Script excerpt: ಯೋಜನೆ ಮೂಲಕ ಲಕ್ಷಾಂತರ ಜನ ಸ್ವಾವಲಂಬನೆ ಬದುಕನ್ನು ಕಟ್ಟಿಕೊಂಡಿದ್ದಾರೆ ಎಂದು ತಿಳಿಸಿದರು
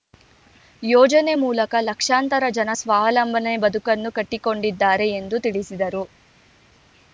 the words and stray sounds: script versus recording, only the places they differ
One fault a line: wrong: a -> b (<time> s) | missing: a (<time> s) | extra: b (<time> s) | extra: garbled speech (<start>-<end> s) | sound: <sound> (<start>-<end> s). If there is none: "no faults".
no faults